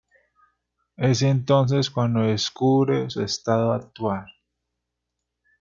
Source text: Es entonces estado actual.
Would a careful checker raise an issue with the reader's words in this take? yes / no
yes